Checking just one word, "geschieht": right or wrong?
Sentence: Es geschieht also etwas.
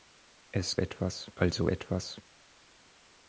wrong